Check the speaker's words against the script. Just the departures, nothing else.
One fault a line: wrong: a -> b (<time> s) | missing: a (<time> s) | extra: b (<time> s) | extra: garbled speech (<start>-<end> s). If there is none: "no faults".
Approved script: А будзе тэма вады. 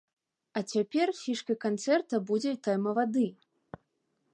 extra: цяпер фішкай канцэрта (0.7 s)